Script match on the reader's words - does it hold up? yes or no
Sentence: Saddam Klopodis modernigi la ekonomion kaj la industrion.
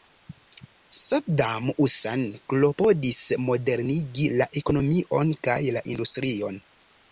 no